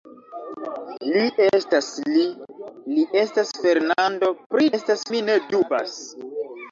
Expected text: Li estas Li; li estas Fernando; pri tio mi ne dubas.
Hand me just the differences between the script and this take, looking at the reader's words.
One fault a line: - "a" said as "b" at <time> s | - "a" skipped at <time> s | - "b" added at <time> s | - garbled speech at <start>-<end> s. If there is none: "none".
- "tio" said as "estas" at 4.8 s